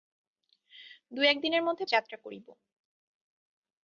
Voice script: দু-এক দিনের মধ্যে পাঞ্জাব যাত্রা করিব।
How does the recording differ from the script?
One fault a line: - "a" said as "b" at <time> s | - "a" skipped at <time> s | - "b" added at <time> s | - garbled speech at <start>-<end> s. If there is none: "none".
- "পাঞ্জাব" skipped at 1.9 s